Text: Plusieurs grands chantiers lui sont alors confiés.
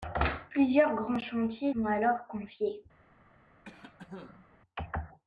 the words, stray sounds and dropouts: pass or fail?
fail